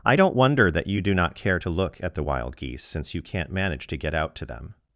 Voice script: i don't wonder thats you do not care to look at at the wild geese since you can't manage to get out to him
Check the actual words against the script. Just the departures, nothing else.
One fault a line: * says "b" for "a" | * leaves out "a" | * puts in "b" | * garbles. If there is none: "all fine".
* says "that" for "thats"
* leaves out "at"
* says "them" for "him"